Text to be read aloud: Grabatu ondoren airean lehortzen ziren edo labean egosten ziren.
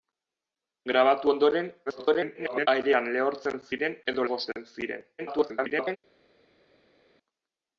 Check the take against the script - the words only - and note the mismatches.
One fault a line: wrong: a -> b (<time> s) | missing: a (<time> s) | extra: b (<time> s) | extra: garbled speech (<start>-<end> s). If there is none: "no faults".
extra: garbled speech (1.9-2.7 s)
missing: labean (4.3 s)
extra: garbled speech (5.2-6.0 s)